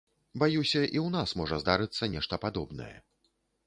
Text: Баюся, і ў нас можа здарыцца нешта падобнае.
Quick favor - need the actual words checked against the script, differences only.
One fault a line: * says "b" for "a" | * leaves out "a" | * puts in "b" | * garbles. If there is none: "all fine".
all fine